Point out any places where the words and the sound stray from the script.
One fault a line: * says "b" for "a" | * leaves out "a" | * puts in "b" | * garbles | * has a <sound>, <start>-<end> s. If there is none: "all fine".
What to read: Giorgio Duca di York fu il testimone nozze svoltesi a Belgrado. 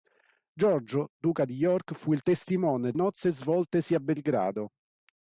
all fine